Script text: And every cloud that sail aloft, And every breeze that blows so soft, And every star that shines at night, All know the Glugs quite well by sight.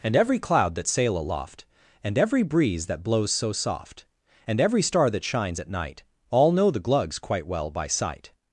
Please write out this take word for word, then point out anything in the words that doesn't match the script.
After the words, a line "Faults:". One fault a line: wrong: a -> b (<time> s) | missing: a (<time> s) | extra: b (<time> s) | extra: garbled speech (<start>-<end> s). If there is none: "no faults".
And every cloud that sail aloft, And every breeze that blows so soft, And every star that shines at night, All know the Glugs quite well by sight.
Faults:
no faults